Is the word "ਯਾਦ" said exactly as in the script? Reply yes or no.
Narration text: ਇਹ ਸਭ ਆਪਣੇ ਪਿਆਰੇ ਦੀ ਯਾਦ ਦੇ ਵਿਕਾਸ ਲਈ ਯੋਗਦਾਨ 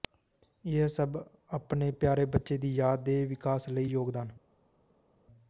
yes